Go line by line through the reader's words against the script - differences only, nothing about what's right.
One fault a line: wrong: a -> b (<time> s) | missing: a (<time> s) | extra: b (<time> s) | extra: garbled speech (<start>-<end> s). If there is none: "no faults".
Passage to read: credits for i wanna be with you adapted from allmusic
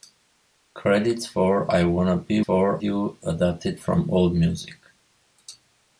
wrong: with -> for (2.4 s)